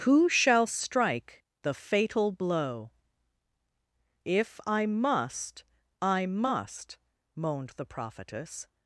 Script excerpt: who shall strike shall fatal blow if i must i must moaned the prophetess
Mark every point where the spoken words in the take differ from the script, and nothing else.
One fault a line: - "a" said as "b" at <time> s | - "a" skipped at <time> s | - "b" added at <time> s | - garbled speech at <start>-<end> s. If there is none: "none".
- "shall" said as "the" at 1.6 s